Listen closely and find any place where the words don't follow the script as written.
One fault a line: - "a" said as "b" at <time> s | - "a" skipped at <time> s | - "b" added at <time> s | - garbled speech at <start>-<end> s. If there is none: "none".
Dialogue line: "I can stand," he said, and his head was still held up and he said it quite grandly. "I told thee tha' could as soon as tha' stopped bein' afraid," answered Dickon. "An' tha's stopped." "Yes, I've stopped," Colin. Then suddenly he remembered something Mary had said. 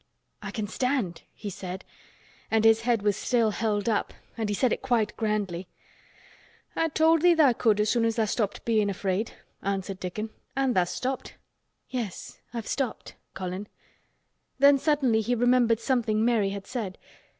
none